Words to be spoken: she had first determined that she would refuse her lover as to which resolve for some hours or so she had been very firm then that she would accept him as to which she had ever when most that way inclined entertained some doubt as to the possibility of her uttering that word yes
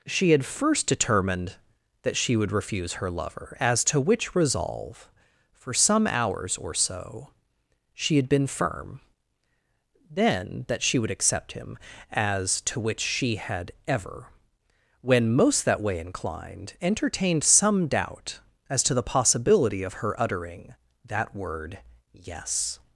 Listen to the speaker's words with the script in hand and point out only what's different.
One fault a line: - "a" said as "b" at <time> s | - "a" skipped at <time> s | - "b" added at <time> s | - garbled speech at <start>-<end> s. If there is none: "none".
- "very" skipped at 8.5 s